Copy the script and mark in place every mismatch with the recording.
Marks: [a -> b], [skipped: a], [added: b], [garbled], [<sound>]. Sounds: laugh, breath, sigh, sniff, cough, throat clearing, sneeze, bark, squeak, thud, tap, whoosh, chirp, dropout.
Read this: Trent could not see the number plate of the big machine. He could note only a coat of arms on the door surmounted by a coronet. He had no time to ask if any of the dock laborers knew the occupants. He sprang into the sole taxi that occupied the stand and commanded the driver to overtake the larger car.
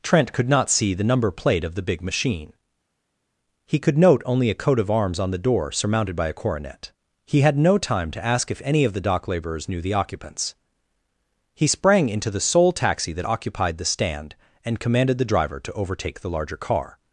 Trent could not see the number plate of the big machine. He could note only a coat of arms on the door surmounted by a coronet. He had no time to ask if any of the dock laborers knew the occupants. He sprang into the sole taxi that occupied the stand and commanded the driver to overtake the larger car.